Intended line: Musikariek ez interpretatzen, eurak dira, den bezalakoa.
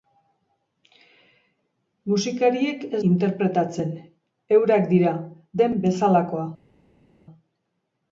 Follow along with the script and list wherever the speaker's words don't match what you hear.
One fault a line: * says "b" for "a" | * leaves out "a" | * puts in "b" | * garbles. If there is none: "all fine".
all fine